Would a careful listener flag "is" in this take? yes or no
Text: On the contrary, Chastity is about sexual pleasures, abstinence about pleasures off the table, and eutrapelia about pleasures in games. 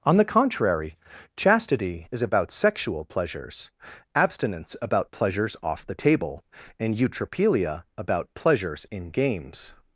no